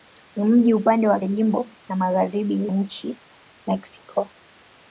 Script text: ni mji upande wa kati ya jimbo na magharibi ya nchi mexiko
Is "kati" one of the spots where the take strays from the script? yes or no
yes